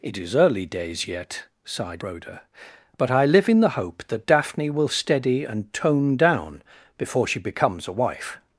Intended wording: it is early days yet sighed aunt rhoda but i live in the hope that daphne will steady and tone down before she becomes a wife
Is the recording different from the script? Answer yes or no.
yes